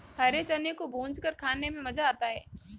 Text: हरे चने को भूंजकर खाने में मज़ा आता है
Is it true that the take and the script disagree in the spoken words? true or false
false